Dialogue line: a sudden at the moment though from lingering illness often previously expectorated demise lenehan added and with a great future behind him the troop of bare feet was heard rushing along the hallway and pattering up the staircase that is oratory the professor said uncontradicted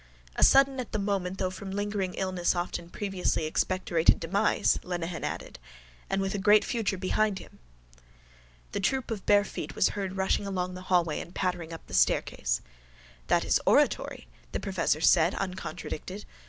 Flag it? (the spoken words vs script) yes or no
no